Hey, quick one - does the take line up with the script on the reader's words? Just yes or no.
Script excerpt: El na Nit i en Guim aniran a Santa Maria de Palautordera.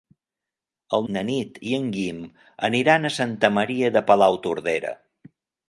yes